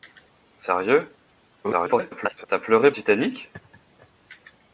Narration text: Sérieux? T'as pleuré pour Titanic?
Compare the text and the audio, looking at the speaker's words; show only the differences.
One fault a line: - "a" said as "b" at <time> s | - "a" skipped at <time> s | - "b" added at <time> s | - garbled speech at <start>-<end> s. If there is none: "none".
- garbled speech at 1.6-2.5 s
- "pour" skipped at 2.9 s